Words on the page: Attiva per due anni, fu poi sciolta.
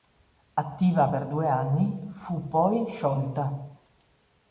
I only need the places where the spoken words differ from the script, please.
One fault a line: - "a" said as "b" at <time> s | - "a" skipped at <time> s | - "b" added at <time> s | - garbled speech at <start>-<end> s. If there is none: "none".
none